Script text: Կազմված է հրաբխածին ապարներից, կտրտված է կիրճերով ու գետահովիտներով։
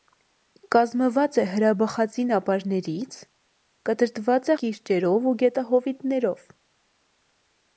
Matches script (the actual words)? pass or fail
pass